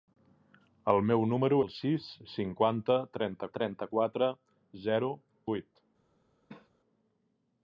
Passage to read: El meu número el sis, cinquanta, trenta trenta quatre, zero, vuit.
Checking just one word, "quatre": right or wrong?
right